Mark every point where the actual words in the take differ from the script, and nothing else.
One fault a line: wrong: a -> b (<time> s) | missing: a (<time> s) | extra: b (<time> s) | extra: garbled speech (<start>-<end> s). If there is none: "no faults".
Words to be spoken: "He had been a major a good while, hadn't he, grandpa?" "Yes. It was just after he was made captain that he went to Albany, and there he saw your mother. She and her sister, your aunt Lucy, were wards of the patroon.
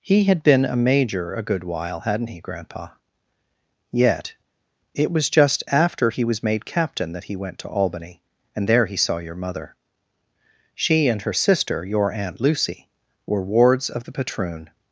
wrong: Yes -> Yet (3.9 s)